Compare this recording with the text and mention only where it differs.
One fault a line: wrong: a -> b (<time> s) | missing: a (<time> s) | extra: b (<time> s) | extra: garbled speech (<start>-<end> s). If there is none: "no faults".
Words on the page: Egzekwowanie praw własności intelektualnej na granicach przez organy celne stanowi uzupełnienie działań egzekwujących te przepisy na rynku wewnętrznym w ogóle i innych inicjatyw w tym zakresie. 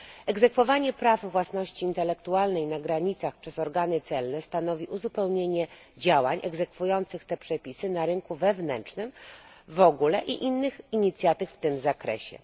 no faults